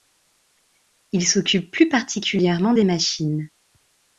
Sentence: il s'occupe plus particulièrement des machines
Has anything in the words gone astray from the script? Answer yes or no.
no